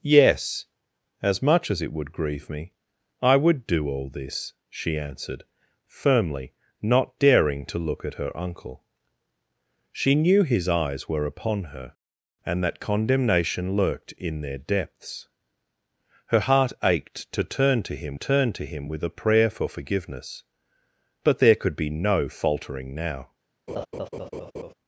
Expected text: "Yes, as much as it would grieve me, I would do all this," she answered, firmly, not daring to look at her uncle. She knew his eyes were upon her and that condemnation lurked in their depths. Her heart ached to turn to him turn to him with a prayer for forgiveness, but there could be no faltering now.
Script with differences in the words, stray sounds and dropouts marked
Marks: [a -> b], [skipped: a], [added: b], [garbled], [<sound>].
"Yes, as much as it would grieve me, I would do all this," she answered, firmly, not daring to look at her uncle. She knew his eyes were upon her and that condemnation lurked in their depths. Her heart ached to turn to him turn to him with a prayer for forgiveness, but there could be no faltering now. [laugh]